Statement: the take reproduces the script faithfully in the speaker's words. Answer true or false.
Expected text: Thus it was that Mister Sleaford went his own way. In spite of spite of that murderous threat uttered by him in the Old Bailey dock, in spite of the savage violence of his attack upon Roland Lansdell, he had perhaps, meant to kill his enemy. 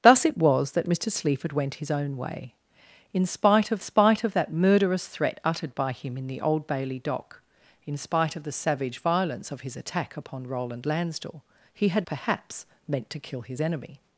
true